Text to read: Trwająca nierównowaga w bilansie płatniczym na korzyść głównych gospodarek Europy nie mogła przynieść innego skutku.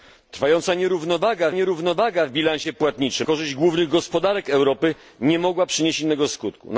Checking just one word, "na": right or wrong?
wrong